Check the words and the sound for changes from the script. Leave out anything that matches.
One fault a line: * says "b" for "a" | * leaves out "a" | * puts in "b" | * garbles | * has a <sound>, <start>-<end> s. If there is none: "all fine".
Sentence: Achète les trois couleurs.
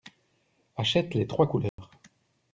* has a dropout, 1.7-1.8 s